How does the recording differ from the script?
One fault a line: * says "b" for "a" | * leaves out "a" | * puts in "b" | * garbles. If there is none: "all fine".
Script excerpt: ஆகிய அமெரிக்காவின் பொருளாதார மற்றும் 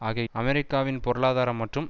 all fine